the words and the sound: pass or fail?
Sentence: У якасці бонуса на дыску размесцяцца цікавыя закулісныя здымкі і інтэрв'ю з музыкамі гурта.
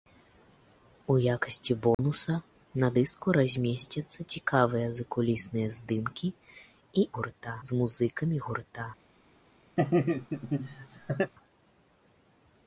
fail